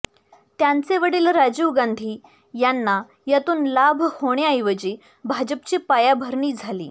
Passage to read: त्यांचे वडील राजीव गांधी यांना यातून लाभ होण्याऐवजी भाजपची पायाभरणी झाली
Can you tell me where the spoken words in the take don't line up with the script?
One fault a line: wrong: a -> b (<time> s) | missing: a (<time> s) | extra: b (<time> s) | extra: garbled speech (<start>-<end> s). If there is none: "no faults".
no faults